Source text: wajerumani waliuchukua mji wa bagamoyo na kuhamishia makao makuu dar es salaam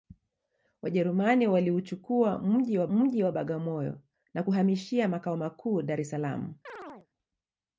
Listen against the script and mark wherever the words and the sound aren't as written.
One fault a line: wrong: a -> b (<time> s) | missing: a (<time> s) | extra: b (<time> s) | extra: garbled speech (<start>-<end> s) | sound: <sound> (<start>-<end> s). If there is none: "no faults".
extra: mji wa (2.9 s)
sound: chirp (6.7-7.1 s)